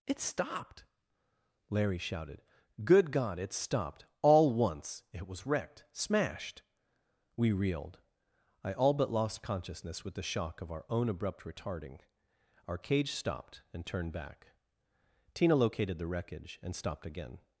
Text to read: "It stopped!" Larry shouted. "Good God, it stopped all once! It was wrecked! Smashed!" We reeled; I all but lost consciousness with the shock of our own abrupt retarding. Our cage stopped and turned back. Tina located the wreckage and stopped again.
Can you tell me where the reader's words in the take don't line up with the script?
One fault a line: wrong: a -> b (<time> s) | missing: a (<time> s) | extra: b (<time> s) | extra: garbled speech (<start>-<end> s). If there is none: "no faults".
no faults